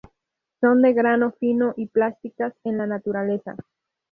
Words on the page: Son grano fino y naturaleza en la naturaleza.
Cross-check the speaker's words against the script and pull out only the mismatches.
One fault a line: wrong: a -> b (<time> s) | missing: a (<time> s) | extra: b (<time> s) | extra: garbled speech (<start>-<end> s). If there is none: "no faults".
extra: de (0.8 s)
wrong: naturaleza -> plásticas (1.9 s)